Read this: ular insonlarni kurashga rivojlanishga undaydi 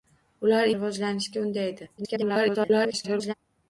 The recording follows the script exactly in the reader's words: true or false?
false